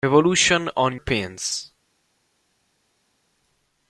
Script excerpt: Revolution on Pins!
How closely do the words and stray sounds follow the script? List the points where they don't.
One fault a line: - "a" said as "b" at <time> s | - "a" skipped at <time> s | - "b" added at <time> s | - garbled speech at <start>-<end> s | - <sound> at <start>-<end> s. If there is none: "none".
none